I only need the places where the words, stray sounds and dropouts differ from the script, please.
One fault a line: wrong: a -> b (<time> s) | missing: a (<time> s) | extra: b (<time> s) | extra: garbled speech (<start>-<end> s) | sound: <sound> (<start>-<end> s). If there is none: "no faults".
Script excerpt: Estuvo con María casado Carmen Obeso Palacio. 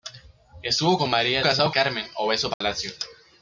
sound: dropout (2.5-2.6 s)